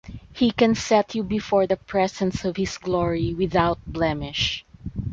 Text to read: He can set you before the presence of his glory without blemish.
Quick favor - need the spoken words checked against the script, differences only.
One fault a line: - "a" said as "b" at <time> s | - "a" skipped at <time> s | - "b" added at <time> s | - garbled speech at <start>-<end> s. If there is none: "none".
none